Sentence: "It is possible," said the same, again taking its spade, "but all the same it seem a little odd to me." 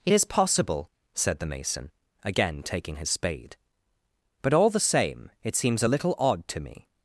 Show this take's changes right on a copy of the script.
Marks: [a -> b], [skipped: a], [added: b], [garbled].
"It is possible," said the [same, -> mason] again taking [its -> his] spade, "but all the same it [seem -> seems] a little odd to me."